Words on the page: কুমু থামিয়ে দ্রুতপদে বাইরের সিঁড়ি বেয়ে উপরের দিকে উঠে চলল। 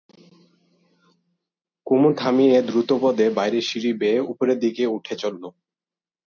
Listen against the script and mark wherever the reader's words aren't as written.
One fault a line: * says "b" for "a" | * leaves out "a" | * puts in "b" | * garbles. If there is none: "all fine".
all fine